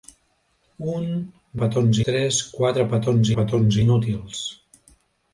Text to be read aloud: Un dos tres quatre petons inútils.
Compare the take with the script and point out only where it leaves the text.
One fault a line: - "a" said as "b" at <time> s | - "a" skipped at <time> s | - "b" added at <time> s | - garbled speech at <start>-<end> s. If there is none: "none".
- "dos" said as "petons" at 1.6 s
- "petons" added at 3.4 s